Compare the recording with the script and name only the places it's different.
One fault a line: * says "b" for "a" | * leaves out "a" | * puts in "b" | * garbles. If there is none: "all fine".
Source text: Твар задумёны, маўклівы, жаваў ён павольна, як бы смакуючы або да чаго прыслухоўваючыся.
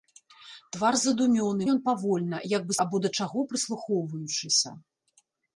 * leaves out "маўклівы жаваў"
* leaves out "смакуючы"